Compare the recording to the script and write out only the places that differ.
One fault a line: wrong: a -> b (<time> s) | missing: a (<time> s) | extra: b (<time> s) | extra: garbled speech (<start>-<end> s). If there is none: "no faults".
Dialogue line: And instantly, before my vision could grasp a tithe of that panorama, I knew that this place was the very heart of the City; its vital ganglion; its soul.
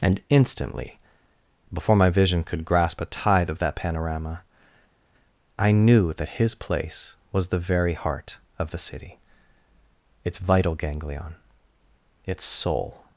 wrong: this -> his (6.4 s)